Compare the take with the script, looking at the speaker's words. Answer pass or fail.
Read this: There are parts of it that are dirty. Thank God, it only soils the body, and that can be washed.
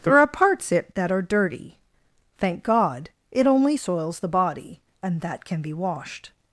fail